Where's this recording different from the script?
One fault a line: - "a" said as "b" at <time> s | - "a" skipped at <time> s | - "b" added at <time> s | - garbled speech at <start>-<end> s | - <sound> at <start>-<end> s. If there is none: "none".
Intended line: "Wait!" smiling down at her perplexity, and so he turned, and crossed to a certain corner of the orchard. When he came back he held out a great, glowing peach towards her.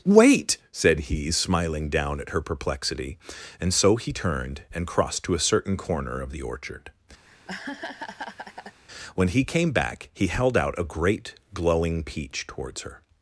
- "said he" added at 0.7 s
- laugh at 7.3-8.8 s